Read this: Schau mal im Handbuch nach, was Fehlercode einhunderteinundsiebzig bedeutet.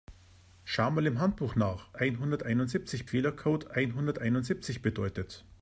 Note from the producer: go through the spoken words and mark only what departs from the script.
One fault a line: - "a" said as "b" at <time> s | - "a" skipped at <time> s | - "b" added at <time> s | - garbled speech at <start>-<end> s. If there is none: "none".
- "was" said as "einhunderteinundsiebzig" at 2.0 s